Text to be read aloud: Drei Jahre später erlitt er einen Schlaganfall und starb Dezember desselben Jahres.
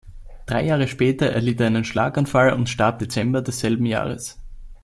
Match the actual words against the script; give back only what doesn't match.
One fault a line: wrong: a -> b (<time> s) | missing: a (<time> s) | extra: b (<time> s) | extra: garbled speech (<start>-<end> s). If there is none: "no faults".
no faults